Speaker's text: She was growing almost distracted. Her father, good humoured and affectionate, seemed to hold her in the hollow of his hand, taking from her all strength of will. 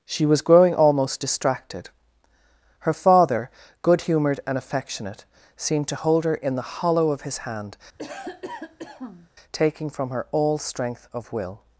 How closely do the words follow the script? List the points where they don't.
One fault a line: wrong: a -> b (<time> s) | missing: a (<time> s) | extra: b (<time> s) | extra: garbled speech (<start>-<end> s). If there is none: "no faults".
no faults